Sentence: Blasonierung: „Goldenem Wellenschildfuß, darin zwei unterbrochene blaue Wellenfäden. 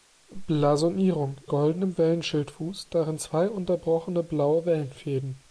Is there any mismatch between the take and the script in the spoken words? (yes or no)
no